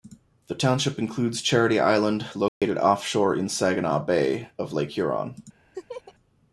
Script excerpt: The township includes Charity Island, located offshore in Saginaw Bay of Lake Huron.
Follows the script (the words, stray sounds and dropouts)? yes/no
no